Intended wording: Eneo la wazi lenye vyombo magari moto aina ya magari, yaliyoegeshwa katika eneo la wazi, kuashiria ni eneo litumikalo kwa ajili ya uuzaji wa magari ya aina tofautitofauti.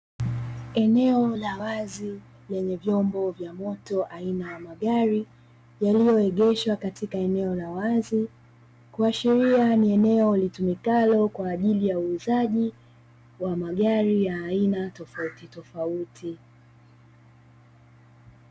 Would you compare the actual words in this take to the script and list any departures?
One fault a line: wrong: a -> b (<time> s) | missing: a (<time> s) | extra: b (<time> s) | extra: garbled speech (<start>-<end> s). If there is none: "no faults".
wrong: magari -> vya (3.3 s)